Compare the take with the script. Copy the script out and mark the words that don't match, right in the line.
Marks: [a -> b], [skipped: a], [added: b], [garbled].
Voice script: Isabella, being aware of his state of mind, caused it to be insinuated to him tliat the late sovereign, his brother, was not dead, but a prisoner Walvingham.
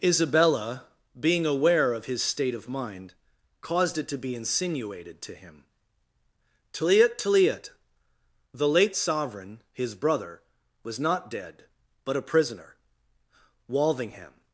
Isabella, being aware of his state of mind, caused it to be insinuated to him tliat [added: tliat] the late sovereign, his brother, was not dead, but a prisoner Walvingham.